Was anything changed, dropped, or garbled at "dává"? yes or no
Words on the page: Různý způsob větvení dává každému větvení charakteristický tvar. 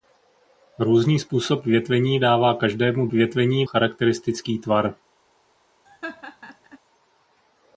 no